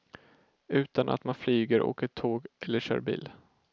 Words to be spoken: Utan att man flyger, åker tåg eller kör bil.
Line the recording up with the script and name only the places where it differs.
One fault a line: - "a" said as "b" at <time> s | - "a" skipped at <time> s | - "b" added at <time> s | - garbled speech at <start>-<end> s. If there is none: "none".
none